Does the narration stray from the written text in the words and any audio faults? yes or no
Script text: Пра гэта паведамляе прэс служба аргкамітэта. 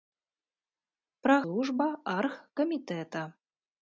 yes